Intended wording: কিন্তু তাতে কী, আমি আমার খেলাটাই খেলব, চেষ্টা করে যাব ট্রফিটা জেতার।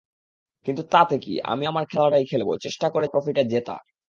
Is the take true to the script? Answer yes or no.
no